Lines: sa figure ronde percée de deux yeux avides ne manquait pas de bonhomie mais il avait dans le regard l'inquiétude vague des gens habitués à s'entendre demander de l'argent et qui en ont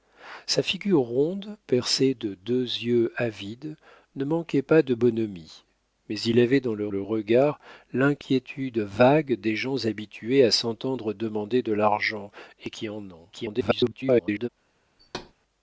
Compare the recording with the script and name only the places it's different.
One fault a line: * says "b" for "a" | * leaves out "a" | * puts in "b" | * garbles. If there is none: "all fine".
* puts in "le"
* garbles